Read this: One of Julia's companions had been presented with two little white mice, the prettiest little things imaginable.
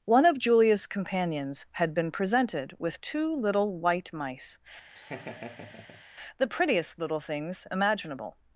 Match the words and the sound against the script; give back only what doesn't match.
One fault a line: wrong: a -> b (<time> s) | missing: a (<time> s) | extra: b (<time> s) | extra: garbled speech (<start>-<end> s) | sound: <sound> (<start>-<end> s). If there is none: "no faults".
sound: laugh (4.9-6.0 s)